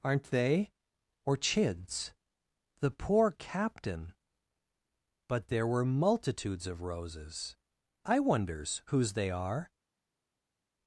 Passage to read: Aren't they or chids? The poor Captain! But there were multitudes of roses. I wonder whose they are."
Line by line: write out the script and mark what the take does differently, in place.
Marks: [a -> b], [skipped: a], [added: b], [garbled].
Aren't they or chids? The poor Captain! But there were multitudes of roses. I [wonder -> wonders] whose they are."